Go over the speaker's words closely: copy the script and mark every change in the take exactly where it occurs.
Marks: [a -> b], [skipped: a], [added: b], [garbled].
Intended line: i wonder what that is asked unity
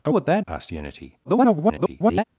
i [skipped: wonder] what that [skipped: is] asked unity [garbled]